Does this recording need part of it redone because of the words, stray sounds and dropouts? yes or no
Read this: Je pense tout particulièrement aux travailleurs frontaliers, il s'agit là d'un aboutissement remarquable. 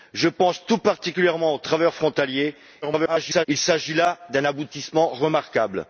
yes